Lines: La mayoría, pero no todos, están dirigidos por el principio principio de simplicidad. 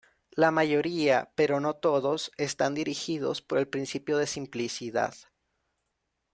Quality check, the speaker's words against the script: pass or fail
fail